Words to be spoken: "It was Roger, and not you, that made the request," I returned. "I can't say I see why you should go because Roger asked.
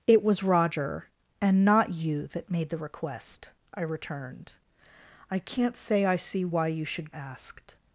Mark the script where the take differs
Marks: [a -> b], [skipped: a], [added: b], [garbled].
"It was Roger, and not you, that made the request," I returned. "I can't say I see why you should [skipped: go because Roger] asked.